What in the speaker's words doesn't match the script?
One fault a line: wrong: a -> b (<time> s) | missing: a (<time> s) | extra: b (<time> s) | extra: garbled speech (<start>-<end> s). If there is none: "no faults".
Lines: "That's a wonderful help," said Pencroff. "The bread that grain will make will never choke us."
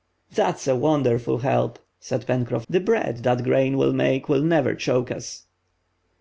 no faults